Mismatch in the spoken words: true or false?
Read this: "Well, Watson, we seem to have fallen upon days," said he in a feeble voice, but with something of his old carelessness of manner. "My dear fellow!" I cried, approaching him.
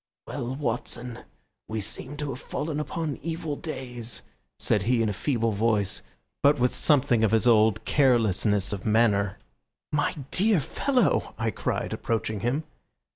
true